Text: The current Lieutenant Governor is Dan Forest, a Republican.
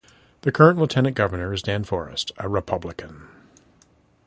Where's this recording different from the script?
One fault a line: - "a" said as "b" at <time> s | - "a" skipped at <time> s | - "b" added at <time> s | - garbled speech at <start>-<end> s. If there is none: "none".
none